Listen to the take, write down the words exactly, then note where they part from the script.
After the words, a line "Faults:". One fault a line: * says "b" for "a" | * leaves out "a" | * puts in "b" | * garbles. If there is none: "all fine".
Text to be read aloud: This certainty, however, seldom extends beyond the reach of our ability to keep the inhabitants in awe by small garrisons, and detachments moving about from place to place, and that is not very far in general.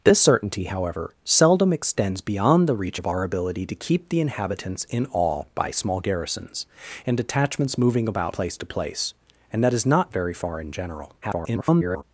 This certainty, however, seldom extends beyond the reach of our ability to keep the inhabitants in awe by small garrisons, and detachments moving about place to place, and that is not very far in general. [garbled]
Faults:
* leaves out "from"
* garbles